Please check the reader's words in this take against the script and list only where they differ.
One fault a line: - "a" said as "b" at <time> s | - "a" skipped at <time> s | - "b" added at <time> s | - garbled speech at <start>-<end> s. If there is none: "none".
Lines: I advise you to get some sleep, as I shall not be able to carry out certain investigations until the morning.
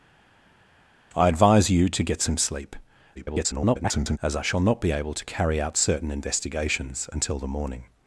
- garbled speech at 3.1-4.2 s